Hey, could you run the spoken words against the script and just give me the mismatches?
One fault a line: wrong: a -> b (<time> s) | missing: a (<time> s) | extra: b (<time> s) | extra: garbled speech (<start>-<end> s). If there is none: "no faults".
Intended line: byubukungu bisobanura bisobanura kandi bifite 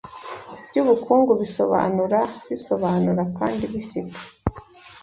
no faults